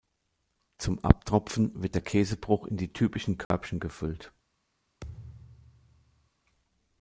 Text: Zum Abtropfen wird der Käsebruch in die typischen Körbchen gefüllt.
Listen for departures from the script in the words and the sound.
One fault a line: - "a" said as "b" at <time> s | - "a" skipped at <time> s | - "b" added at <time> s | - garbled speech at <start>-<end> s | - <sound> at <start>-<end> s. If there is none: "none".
- dropout at 3.4-3.5 s
- thud at 5.0-6.3 s